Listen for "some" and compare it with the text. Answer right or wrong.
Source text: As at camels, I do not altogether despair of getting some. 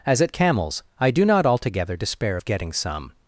right